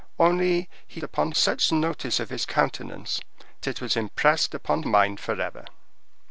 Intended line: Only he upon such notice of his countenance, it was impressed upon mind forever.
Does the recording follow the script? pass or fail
pass